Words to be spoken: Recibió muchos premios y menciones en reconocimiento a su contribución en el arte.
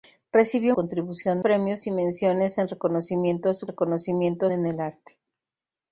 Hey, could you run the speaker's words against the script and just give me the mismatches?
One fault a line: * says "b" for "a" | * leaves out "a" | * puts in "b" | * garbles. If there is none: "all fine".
* says "contribución" for "muchos"
* says "reconocimiento" for "contribución"